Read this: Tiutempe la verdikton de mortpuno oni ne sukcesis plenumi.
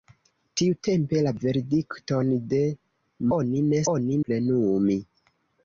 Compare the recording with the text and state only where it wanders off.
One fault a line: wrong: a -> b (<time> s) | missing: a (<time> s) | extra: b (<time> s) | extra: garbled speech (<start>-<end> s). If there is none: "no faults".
missing: mortpuno (2.6 s)
wrong: sukcesis -> oni (3.9 s)